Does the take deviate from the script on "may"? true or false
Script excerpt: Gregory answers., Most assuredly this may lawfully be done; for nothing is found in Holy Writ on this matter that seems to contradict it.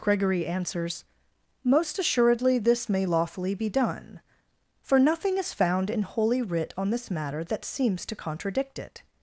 false